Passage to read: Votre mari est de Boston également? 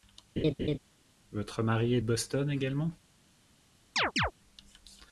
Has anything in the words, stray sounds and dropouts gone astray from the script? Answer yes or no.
yes